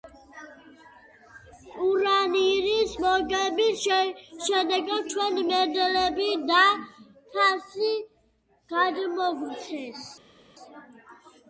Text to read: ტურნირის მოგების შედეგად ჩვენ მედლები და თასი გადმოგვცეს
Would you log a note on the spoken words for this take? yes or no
no